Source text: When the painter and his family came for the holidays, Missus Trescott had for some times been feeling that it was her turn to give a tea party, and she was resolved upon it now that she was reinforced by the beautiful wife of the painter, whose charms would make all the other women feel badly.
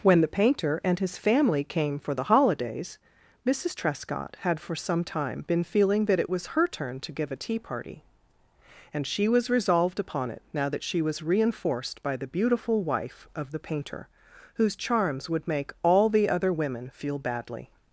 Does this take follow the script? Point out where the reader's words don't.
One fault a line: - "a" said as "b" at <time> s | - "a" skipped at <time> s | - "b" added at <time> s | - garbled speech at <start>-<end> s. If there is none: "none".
- "times" said as "time" at 5.0 s